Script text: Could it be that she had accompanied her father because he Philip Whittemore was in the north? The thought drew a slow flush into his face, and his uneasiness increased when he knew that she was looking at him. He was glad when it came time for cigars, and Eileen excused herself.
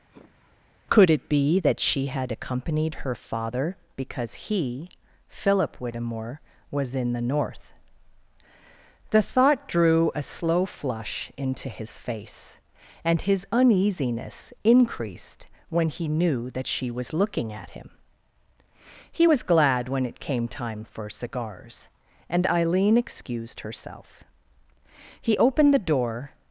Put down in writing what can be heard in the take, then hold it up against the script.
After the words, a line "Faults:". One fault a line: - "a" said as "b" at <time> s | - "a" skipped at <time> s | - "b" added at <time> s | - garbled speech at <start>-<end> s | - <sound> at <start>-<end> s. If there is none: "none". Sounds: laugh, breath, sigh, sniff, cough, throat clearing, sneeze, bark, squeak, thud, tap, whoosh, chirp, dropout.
Could it be that she had accompanied her father because he Philip Whittemore was in the north? The thought drew a slow flush into his face, and his uneasiness increased when he knew that she was looking at him. He was glad when it came time for cigars, and Eileen excused herself. He opened the door
Faults:
- sigh at 0.1-0.7 s
- "He opened the door" added at 25.2 s